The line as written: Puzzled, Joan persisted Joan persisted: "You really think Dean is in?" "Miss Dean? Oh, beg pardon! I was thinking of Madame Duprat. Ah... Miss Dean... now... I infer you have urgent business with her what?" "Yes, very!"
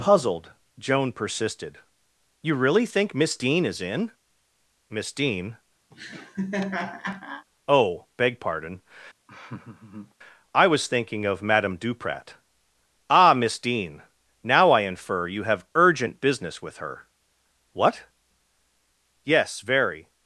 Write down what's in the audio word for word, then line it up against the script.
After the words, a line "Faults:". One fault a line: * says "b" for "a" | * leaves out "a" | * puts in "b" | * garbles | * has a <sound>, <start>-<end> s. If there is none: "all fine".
Puzzled, Joan persisted: "You really think Miss Dean is in?" "Miss Dean? Oh, beg pardon! I was thinking of Madame Duprat. Ah... Miss Dean... now... I infer you have urgent business with her what?" "Yes, very!"
Faults:
* leaves out "Joan persisted"
* puts in "Miss"
* has a laugh, 5.9-7.5 s
* has a laugh, 9.3-10.2 s